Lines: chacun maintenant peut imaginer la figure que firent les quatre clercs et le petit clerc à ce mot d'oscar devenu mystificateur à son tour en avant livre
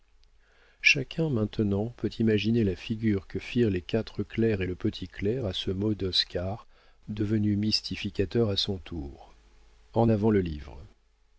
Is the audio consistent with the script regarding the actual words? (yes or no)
no